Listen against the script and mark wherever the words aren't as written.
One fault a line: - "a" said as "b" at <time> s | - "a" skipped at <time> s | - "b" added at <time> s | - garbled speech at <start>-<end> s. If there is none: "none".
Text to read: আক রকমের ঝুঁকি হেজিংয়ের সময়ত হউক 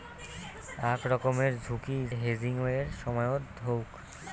none